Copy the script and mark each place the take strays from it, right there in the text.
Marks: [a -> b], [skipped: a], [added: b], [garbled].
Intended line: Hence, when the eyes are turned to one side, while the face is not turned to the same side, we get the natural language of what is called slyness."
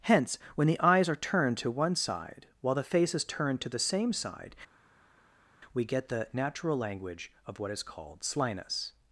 Hence, when the eyes are turned to one side, while the face is [skipped: not] turned to the same side, we get the natural language of what is called slyness."